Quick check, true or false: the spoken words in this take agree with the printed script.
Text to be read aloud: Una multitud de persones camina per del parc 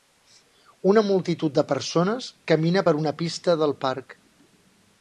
false